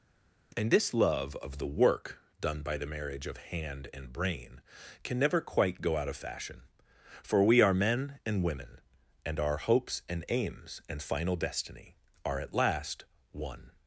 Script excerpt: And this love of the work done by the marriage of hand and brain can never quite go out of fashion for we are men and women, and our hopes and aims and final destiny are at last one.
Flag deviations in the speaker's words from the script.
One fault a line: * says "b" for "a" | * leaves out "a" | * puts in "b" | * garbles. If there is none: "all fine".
all fine